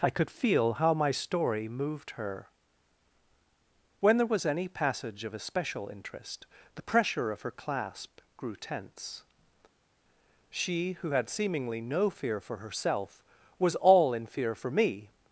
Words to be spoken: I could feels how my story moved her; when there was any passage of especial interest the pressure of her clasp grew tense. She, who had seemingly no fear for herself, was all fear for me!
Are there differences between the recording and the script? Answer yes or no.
yes